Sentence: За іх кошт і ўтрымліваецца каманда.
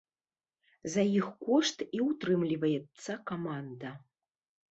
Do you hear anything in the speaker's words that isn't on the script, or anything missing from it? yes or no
no